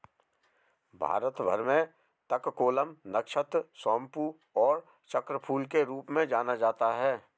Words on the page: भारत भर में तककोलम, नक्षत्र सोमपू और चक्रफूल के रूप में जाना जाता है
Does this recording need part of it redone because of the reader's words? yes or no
no